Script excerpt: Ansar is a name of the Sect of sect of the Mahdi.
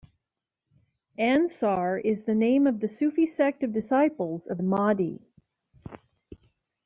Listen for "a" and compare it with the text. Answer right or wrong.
wrong